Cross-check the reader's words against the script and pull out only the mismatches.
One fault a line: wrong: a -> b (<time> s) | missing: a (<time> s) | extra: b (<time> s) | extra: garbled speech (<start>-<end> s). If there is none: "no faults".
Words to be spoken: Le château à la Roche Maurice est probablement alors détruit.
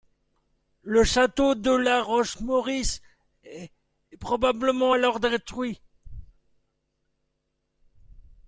wrong: à -> de (1.5 s)